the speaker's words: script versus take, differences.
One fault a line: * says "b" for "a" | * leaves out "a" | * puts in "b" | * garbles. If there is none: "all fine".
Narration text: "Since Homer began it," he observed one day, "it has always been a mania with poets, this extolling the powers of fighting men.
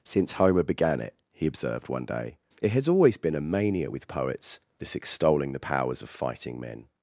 all fine